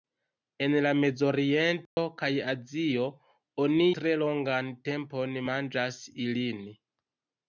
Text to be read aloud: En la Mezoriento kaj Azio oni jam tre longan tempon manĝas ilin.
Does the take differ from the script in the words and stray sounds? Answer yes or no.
yes